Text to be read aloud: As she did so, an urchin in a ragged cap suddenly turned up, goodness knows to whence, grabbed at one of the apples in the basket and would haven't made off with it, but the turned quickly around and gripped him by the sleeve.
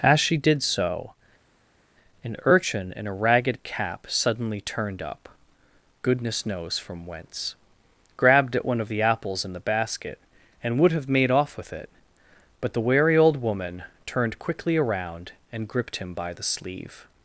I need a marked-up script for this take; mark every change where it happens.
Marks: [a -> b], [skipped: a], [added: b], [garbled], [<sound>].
As she did so, an urchin in a ragged cap suddenly turned up, goodness knows [to -> from] whence, grabbed at one of the apples in the basket and would [haven't -> have] made off with it, but the [added: wary old woman] turned quickly around and gripped him by the sleeve.